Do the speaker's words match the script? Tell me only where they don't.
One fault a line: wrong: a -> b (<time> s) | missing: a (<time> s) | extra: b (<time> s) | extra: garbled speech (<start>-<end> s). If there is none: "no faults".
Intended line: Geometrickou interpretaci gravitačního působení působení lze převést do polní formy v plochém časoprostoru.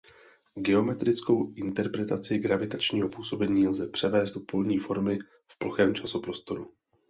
missing: působení (3.7 s)